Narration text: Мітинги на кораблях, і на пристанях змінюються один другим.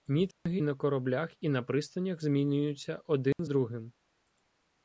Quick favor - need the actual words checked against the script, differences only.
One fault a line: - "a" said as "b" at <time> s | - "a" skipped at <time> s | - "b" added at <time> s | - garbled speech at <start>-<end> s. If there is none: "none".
none